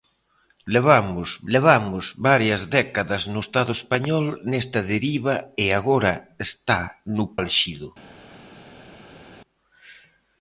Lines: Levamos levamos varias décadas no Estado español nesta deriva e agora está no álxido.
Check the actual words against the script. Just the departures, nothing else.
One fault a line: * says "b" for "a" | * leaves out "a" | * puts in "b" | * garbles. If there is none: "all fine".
all fine